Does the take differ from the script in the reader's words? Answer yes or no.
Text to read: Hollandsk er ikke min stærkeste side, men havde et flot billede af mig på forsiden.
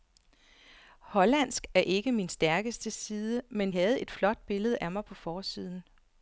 no